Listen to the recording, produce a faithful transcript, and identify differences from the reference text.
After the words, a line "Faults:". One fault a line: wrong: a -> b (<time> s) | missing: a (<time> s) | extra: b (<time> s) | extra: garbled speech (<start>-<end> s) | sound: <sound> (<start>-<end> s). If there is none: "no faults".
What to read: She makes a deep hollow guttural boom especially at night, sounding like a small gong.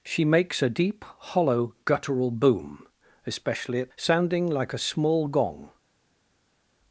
She makes a deep hollow guttural boom especially at sounding like a small gong.
Faults:
missing: night (3.9 s)